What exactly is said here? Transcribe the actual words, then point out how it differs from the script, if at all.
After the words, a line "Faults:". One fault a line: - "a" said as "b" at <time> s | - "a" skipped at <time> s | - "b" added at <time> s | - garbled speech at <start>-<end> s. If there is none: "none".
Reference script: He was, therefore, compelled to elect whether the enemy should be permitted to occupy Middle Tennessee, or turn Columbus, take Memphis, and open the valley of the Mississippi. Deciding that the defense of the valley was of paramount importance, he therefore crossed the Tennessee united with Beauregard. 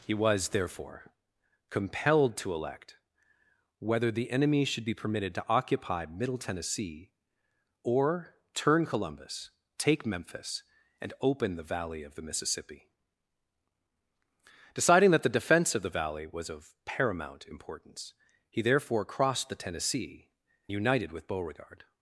He was, therefore, compelled to elect whether the enemy should be permitted to occupy Middle Tennessee, or turn Columbus, take Memphis, and open the valley of the Mississippi. Deciding that the defense of the valley was of paramount importance, he therefore crossed the Tennessee united with Beauregard.
Faults:
none